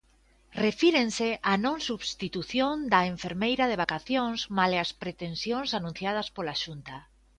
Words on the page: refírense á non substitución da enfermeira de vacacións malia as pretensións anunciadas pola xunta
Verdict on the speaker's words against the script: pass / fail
pass